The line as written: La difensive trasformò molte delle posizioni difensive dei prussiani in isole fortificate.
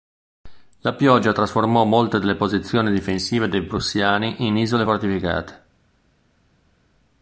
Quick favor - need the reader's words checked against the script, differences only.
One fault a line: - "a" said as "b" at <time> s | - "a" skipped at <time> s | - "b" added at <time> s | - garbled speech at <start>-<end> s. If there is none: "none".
- "difensive" said as "pioggia" at 0.9 s